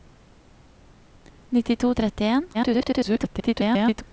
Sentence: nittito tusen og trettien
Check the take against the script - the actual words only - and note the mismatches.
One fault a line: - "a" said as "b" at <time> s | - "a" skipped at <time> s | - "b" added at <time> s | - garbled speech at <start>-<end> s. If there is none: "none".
- "tusen" skipped at 1.9 s
- garbled speech at 2.5-4.0 s